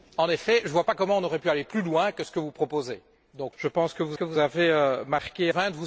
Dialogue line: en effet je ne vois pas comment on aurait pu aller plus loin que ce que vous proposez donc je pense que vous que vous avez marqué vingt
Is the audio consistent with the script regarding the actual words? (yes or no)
yes